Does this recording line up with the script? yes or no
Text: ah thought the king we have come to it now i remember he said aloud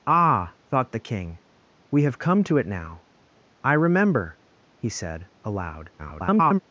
no